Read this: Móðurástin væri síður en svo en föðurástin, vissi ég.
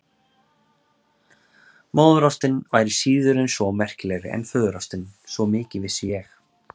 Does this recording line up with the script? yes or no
no